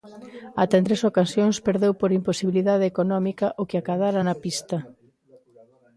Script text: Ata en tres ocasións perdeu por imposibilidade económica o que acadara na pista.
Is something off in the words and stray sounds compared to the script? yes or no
no